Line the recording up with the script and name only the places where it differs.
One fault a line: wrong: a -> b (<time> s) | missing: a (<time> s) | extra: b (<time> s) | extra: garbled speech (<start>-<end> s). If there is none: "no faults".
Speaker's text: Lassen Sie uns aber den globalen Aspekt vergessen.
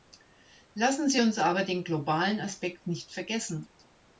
extra: nicht (2.9 s)